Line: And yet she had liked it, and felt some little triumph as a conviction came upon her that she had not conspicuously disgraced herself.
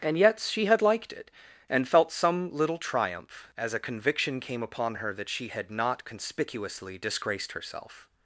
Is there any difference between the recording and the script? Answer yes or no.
no